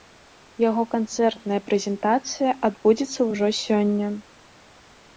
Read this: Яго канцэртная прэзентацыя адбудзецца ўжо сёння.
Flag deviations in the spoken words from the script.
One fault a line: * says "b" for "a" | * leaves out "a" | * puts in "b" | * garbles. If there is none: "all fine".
all fine